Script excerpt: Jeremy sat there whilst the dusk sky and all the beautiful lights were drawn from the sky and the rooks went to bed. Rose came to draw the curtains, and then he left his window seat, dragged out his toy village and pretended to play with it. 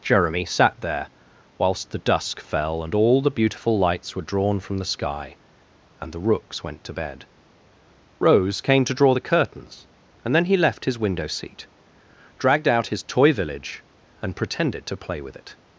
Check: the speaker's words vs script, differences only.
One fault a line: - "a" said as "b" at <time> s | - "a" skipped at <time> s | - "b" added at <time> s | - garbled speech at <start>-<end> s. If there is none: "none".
- "sky" said as "fell" at 2.4 s